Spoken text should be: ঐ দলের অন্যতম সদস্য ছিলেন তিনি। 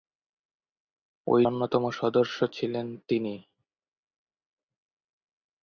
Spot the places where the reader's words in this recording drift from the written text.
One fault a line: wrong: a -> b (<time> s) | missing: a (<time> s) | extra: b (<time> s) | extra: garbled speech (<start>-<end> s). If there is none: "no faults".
missing: দলের (1.4 s)